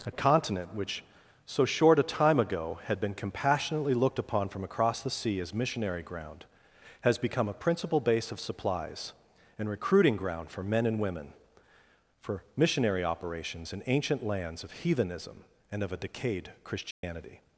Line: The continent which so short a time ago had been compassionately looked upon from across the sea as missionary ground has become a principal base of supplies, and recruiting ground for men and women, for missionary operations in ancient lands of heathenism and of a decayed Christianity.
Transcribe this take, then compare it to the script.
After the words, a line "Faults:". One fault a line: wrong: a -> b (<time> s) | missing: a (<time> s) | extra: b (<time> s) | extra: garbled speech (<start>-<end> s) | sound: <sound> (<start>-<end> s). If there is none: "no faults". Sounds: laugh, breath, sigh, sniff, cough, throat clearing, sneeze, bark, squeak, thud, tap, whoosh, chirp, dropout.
A continent which so short a time ago had been compassionately looked upon from across the sea as missionary ground has become a principal base of supplies, and recruiting ground for men and women, for missionary operations in ancient lands of heathenism and of a decayed Christianity.
Faults:
wrong: The -> A (0.1 s)
sound: dropout (16.9-17.0 s)